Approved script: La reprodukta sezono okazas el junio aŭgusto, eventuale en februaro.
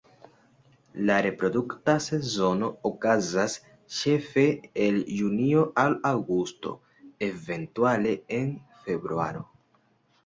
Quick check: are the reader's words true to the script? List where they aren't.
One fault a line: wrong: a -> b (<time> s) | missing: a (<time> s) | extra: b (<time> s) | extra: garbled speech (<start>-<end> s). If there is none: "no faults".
extra: ĉefe (4.0 s)
extra: al (5.8 s)